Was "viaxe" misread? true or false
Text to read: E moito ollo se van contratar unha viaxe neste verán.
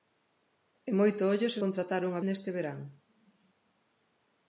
true